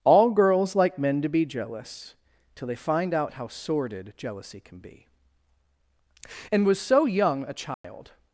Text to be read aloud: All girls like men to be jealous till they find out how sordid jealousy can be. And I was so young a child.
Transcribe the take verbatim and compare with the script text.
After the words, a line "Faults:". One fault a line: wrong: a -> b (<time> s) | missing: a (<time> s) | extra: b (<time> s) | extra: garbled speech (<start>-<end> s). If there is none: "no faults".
All girls like men to be jealous till they find out how sordid jealousy can be. And was so young a child.
Faults:
missing: I (6.7 s)